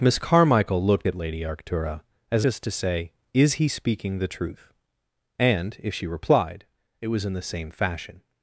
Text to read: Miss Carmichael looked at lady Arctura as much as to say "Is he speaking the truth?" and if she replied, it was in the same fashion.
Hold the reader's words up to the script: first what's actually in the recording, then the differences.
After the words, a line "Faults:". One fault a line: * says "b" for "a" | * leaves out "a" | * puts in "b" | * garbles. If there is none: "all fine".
Miss Carmichael looked at lady Arctura as as to say "Is he speaking the truth?" and if she replied, it was in the same fashion.
Faults:
* leaves out "much"